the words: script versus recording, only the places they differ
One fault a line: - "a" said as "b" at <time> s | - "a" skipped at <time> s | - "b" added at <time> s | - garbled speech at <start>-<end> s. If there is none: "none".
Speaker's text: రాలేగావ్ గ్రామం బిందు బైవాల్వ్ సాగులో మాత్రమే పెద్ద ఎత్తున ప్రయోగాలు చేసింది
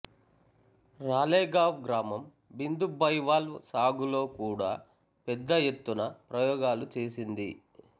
- "మాత్రమే" said as "కూడా" at 4.4 s